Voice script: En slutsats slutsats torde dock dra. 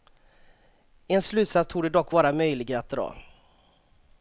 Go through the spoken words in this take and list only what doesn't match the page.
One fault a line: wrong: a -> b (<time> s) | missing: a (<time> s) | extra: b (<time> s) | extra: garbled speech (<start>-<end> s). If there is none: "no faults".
missing: slutsats (1.7 s)
extra: vara möjlig att (2.1 s)